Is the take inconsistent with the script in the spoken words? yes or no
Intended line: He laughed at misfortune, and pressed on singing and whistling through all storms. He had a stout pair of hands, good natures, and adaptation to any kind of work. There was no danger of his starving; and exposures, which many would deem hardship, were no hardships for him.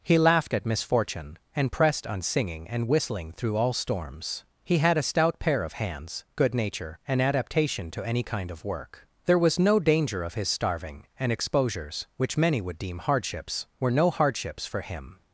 yes